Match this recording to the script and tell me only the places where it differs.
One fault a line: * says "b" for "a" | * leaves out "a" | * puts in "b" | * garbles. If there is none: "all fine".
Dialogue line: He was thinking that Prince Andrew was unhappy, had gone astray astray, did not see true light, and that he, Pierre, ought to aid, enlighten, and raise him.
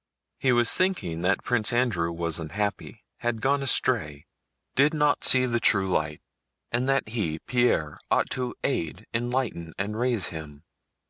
* leaves out "astray"
* puts in "the"